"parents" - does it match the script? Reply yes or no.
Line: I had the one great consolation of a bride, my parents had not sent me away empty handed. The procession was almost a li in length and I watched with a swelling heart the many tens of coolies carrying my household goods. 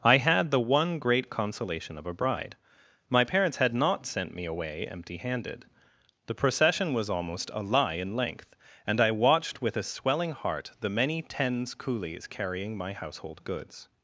yes